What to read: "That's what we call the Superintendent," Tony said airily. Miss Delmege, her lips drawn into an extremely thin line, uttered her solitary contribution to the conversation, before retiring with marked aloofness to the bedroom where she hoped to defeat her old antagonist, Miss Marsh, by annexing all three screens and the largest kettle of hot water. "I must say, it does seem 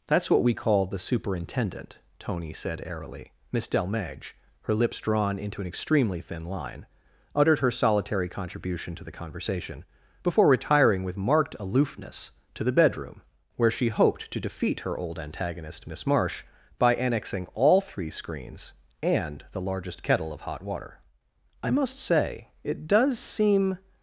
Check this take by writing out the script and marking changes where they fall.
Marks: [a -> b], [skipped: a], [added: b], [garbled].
"That's what we call the Superintendent," Tony said airily. Miss Delmege, her lips drawn into an extremely thin line, uttered her solitary contribution to the conversation, before retiring with marked aloofness to the bedroom where she hoped to defeat her old antagonist, Miss Marsh, by annexing all three screens and the largest kettle of hot water. "I must say, it does seem